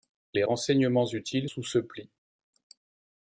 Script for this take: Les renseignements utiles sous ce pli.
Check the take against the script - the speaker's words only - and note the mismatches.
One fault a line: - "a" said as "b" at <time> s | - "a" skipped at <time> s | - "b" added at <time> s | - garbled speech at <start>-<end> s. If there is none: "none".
none